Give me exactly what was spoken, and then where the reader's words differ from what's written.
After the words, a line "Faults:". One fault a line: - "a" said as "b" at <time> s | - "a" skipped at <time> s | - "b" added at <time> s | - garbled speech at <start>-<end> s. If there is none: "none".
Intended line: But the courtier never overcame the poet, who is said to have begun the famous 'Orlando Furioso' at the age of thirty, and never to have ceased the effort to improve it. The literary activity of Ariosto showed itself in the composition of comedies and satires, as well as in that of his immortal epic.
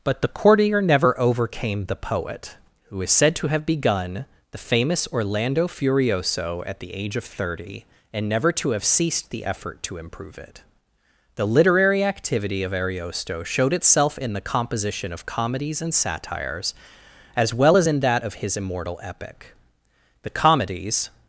But the courtier never overcame the poet, who is said to have begun the famous 'Orlando Furioso' at the age of thirty, and never to have ceased the effort to improve it. The literary activity of Ariosto showed itself in the composition of comedies and satires, as well as in that of his immortal epic. The comedies
Faults:
- "The comedies" added at 20.2 s